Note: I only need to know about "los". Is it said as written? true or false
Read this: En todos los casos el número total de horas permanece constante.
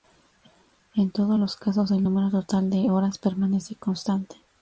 true